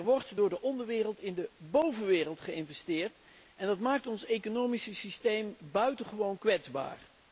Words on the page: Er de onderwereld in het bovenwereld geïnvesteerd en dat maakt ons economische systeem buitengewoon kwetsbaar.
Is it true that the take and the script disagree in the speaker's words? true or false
true